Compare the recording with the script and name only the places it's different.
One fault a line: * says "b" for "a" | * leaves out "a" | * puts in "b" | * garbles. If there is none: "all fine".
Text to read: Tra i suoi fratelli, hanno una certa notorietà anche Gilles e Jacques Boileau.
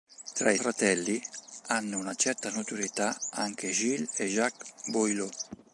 * leaves out "suoi"